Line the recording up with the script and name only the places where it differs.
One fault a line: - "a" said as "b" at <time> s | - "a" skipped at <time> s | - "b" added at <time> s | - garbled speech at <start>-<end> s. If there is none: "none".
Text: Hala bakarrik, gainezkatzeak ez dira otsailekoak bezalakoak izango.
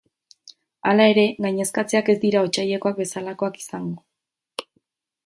- "bakarrik" said as "ere" at 1.1 s